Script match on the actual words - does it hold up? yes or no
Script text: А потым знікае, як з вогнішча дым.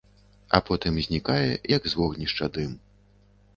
yes